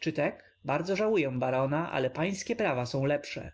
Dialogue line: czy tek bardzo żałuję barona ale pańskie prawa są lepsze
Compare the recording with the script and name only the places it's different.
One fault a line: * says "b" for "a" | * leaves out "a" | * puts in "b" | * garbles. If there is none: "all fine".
all fine